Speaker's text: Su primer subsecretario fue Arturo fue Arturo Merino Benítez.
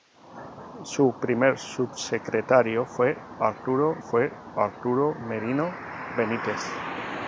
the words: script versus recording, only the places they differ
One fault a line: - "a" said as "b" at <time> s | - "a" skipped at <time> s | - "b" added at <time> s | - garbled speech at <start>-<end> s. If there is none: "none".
none